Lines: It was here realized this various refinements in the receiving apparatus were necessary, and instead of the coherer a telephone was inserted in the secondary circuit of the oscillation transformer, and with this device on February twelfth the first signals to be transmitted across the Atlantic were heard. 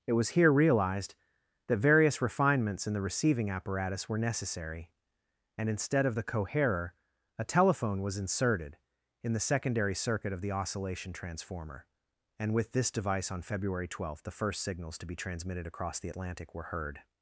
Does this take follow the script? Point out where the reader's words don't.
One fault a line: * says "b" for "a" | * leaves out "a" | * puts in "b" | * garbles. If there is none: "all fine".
* says "that" for "this"